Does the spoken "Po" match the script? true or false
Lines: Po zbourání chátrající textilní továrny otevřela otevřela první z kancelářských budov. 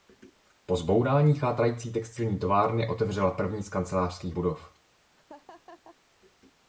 true